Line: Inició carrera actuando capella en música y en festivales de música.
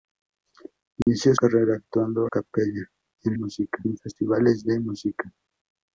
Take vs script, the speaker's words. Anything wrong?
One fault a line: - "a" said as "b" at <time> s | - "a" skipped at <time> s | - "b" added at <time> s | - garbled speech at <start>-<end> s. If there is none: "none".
none